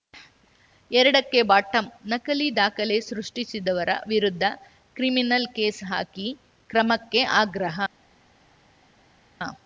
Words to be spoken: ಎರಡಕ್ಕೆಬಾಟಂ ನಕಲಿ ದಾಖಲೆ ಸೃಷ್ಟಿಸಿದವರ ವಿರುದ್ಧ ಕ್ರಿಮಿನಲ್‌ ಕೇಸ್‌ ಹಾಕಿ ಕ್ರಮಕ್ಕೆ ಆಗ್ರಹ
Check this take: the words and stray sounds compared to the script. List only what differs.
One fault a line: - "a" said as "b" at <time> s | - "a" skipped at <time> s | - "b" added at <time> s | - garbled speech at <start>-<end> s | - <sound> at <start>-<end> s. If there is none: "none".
none